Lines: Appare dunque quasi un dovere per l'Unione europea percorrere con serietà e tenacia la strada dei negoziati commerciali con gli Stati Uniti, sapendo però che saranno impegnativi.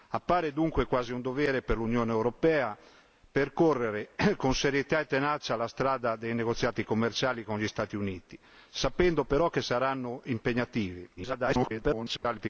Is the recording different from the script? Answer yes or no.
yes